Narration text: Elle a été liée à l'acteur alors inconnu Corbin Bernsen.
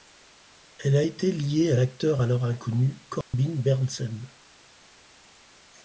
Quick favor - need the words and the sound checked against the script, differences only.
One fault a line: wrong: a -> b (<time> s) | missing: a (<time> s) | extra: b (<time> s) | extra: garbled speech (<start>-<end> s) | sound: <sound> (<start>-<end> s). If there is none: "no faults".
sound: dropout (3.2-3.3 s)